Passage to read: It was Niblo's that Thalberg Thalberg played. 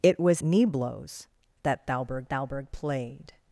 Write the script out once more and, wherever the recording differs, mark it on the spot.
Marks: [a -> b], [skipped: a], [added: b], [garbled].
It was Niblo's that Thalberg Thalberg played.